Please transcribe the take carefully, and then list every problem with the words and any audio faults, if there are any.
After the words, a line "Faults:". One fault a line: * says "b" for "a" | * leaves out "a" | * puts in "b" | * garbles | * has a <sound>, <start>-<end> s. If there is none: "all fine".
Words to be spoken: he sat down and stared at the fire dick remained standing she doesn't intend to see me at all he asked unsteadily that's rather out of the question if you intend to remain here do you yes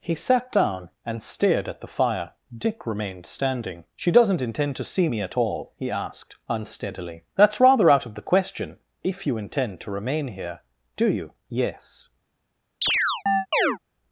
he sat down and stared at the fire dick remained standing she doesn't intend to see me at all he asked unsteadily that's rather out of the question if you intend to remain here do you yes
Faults:
* has a chirp, 12.8-13.8 s